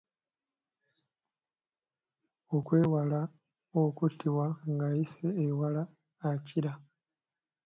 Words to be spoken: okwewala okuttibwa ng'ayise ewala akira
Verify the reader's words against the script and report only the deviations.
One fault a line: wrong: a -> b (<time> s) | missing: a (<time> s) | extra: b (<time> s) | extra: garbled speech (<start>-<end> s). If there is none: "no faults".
no faults